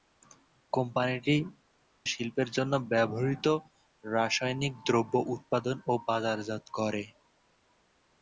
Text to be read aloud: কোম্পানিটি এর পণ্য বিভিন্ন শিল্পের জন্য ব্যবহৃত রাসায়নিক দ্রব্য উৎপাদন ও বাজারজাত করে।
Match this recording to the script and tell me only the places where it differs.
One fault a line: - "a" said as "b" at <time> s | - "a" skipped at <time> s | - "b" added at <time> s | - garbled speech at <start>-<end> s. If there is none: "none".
- "এর পণ্য বিভিন্ন" skipped at 1.4 s